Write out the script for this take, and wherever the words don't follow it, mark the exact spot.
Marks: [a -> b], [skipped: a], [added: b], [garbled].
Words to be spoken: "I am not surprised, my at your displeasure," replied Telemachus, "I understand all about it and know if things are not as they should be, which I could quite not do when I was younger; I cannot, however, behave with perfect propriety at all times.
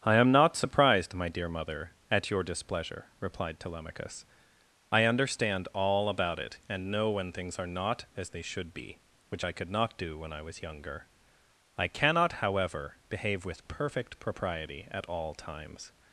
"I am not surprised, my [added: dear mother] at your displeasure," replied Telemachus, "I understand all about it and know [if -> when] things are not as they should be, which I could [skipped: quite] not do when I was younger; I cannot, however, behave with perfect propriety at all times.